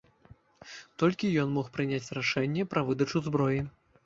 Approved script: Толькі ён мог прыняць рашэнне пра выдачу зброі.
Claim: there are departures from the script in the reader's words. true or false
false